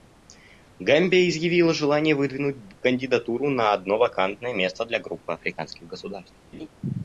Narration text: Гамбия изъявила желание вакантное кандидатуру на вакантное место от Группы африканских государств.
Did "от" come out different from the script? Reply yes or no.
yes